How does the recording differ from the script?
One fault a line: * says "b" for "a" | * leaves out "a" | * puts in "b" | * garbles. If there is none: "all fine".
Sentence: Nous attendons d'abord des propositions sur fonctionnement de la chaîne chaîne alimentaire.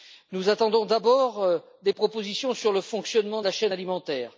* puts in "le"
* leaves out "chaîne"